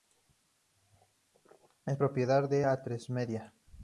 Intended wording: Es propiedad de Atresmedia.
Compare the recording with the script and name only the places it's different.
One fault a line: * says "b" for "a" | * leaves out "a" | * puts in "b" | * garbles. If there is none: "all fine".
all fine